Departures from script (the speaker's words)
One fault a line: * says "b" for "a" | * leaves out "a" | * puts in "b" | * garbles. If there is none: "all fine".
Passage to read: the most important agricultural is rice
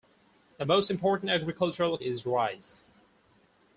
all fine